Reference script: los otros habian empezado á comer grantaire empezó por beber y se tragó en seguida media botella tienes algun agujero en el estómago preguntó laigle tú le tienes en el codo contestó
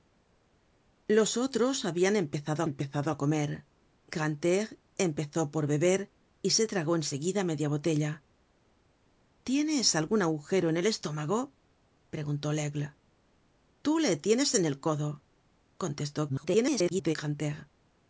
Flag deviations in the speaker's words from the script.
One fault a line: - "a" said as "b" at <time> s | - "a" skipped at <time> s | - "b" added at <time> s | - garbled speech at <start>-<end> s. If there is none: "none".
- "empezado" added at 2.7 s
- garbled speech at 16.3-17.2 s